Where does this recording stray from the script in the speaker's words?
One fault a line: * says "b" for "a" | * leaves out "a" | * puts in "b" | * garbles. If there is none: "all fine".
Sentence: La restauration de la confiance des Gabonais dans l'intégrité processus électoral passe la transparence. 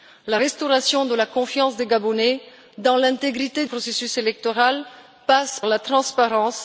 all fine